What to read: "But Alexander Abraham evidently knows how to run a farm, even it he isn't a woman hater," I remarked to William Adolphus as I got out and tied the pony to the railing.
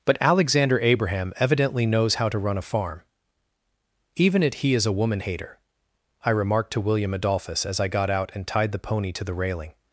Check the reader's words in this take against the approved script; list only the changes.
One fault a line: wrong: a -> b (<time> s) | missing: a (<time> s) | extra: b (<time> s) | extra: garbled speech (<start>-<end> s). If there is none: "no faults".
wrong: isn't -> is (4.7 s)